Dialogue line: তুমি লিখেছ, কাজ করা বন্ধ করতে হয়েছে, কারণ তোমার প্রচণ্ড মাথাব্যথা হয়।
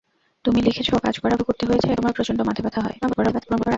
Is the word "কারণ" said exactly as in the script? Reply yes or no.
no